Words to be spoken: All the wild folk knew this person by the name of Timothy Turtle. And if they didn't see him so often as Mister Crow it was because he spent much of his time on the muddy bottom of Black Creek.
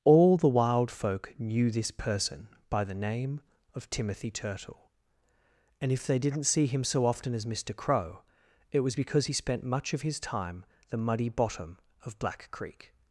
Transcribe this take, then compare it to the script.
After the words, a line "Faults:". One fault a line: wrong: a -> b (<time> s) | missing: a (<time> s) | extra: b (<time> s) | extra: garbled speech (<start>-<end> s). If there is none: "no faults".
All the wild folk knew this person by the name of Timothy Turtle. And if they didn't see him so often as Mister Crow it was because he spent much of his time the muddy bottom of Black Creek.
Faults:
missing: on (10.6 s)